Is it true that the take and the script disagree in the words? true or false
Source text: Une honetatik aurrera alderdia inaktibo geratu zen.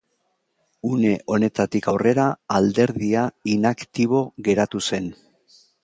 false